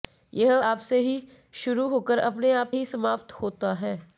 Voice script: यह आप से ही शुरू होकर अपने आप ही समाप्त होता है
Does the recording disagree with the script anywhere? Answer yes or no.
no